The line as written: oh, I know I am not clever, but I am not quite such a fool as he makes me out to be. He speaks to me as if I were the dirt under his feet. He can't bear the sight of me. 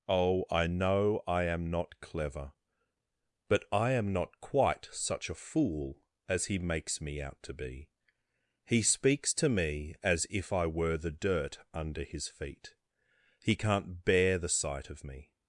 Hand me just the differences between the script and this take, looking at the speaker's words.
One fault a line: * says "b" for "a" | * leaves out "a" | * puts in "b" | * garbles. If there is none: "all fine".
all fine